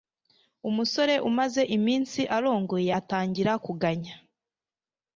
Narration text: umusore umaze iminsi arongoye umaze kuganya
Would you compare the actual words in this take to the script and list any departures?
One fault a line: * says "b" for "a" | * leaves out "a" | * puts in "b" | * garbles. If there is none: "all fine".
* says "atangira" for "umaze"